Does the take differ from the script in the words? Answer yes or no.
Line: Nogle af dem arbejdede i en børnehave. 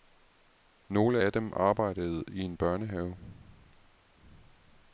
no